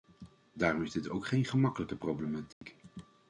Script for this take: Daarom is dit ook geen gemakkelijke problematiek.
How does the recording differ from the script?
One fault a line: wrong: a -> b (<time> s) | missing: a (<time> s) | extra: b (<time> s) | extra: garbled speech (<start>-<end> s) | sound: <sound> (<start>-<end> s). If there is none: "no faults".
sound: dropout (2.5-2.6 s)